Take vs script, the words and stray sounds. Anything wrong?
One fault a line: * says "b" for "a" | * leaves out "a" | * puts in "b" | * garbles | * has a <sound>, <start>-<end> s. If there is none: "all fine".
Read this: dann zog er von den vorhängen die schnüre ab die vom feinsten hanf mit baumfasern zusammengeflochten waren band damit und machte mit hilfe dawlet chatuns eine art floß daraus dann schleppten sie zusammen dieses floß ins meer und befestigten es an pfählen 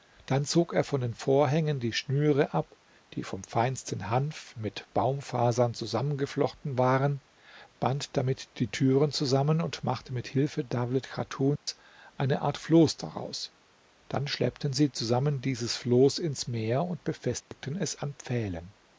* puts in "die türen zusammen"
* has a dropout, 11.6-11.7 s
* has a dropout, 17.4-17.5 s